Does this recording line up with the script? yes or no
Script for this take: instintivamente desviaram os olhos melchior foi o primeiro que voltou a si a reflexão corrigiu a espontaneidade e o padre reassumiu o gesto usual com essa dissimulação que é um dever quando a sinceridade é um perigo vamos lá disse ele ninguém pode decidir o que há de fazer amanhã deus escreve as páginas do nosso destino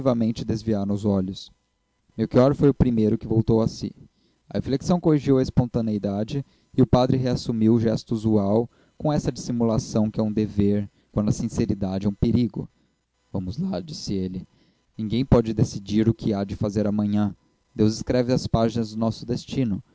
yes